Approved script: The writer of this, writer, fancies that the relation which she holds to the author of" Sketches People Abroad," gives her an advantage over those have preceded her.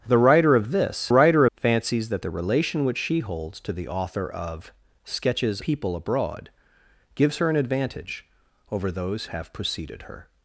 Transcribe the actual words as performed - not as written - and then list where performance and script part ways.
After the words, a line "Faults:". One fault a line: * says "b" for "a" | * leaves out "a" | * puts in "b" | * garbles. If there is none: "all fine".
The writer of this, writer, fancies that the relation which she holds to the author of" Sketches People Abroad," gives her an advantage over those have preceded her.
Faults:
all fine